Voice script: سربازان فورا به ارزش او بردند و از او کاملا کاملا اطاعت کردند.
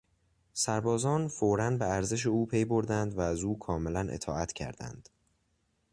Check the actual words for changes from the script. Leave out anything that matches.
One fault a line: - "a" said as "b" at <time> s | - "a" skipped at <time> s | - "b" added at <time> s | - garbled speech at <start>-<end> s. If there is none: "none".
- "پی" added at 2.5 s
- "کاملا" skipped at 4.1 s